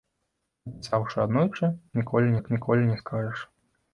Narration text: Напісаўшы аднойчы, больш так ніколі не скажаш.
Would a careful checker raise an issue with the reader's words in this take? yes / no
yes